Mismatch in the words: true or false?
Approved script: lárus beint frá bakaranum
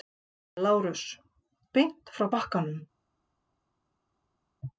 false